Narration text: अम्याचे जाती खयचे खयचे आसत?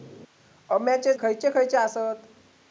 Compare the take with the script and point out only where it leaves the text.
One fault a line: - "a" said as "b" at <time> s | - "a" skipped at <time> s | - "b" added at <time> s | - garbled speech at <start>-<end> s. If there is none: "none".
- "जाती" skipped at 1.1 s